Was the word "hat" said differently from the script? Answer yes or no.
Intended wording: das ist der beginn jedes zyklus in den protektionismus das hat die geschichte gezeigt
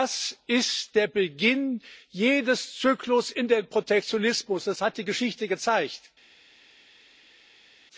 no